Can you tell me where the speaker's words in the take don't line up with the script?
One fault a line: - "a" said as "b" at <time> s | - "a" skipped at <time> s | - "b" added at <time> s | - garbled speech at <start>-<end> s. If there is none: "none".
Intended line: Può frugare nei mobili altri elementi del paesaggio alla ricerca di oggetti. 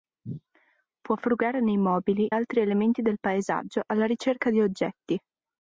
none